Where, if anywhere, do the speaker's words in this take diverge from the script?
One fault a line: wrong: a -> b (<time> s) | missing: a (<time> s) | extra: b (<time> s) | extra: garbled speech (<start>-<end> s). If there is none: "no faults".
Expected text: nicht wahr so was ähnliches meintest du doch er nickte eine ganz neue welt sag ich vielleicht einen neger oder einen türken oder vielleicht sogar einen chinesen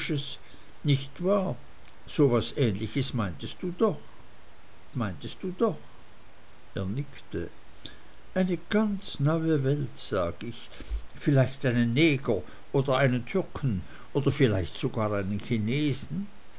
extra: meintest du doch (4.9 s)